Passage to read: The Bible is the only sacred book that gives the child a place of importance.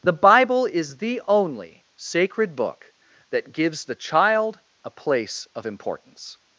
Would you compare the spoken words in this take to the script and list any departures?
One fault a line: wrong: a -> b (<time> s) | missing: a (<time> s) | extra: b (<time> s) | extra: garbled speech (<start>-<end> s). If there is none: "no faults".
no faults